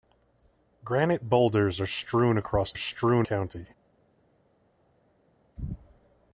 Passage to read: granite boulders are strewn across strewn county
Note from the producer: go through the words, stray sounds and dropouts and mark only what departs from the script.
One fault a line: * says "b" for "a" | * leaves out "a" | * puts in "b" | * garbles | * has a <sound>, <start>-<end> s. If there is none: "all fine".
all fine